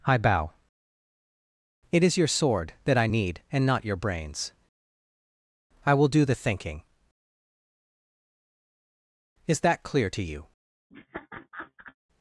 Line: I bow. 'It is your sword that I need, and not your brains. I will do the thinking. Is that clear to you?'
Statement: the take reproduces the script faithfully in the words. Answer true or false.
true